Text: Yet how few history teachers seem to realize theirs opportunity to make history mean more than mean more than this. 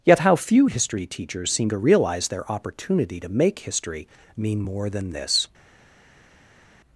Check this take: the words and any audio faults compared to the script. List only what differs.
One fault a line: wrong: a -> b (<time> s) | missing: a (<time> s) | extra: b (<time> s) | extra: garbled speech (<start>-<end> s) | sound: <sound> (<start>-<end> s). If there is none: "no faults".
wrong: theirs -> their (2.3 s)
missing: mean more than (5.1 s)